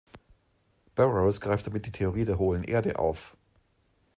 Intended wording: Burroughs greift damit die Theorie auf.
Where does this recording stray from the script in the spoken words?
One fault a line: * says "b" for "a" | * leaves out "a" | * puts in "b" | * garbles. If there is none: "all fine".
* puts in "der hohlen Erde"